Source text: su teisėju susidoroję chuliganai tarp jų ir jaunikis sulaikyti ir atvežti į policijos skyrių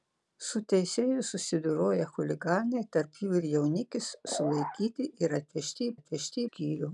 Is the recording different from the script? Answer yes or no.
yes